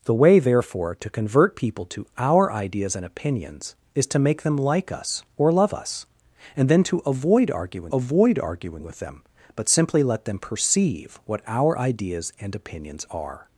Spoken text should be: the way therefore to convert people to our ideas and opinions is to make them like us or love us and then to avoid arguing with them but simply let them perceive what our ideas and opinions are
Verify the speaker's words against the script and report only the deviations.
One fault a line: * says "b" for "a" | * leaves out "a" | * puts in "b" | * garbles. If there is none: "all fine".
* puts in "avoid arguing"